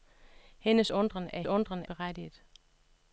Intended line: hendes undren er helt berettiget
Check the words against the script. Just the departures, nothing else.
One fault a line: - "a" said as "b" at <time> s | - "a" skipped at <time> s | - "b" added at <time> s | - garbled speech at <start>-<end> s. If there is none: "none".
- "helt" said as "undren" at 1.5 s